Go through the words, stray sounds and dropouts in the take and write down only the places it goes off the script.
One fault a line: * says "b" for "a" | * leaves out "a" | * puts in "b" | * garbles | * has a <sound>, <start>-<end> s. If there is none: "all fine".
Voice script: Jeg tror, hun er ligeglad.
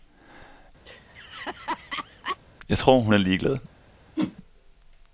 * has a laugh, 0.9-2.4 s
* has a whoosh, 4.2-4.4 s